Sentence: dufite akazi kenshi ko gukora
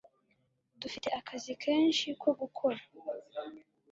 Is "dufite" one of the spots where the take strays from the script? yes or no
no